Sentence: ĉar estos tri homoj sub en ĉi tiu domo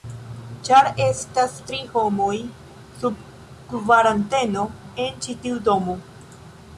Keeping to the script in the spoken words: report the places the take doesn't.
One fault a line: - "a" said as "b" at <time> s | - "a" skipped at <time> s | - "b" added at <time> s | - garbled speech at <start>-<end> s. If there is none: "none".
- "estos" said as "estas" at 1.1 s
- "kvaranteno" added at 3.7 s